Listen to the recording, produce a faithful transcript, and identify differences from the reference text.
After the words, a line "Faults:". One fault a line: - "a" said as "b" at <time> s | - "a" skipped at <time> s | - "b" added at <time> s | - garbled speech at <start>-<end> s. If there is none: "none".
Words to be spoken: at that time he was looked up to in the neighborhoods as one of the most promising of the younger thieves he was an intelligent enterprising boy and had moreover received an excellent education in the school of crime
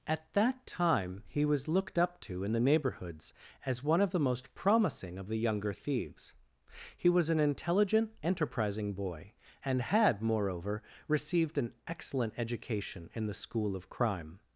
at that time he was looked up to in the neighborhoods as one of the most promising of the younger thieves he was an intelligent enterprising boy and had moreover received an excellent education in the school of crime
Faults:
none